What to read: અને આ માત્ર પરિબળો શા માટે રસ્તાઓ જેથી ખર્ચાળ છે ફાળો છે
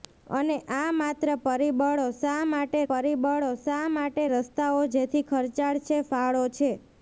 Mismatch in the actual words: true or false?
true